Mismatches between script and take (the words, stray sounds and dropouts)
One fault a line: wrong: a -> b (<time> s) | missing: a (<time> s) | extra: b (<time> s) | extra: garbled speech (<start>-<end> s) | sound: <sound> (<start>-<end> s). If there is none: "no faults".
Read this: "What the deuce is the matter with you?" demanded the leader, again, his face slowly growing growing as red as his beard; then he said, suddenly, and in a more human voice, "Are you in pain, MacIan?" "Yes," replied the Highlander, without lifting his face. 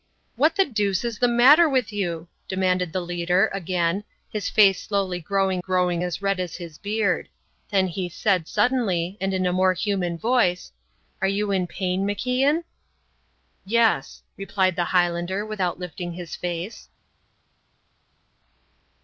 no faults